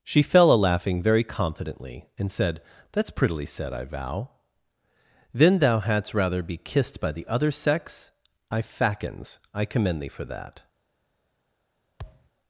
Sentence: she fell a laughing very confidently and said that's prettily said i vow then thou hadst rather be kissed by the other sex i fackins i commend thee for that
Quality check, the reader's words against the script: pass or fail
pass